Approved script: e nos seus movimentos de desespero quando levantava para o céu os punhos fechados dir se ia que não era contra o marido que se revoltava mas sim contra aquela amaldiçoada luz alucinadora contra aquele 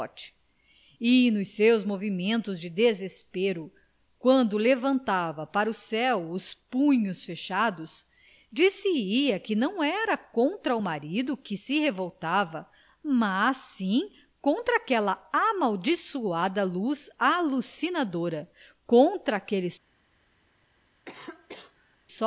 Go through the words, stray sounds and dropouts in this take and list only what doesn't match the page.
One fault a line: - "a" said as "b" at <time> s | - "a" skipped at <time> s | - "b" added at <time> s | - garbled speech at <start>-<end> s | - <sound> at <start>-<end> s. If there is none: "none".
- cough at 21.0-22.0 s